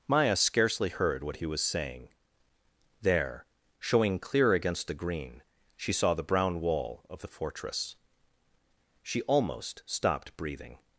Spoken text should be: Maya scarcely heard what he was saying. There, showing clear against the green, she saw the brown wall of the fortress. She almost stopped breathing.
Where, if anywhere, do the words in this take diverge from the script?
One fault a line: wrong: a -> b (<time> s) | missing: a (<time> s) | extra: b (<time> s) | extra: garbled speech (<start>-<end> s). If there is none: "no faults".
no faults